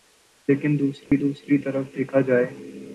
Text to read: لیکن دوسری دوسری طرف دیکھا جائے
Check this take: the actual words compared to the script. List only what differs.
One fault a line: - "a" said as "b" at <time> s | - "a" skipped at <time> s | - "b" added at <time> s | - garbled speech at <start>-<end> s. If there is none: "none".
none